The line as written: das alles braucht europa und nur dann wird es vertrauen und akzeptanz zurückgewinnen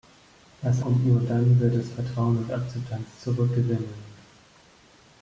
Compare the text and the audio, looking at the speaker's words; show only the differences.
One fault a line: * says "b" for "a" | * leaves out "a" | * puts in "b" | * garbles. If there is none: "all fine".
* leaves out "alles braucht europa"